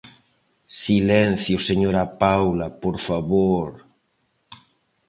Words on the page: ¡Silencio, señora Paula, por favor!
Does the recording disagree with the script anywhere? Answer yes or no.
no